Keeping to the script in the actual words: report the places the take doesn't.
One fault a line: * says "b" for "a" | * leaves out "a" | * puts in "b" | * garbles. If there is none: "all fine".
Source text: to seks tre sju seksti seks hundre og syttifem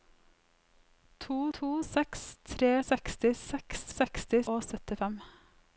* puts in "to"
* leaves out "sju"
* says "seksti" for "hundre"